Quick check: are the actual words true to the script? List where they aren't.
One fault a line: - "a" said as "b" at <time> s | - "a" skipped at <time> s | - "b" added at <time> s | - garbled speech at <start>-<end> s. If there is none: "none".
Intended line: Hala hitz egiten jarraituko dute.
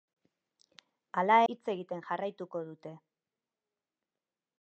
none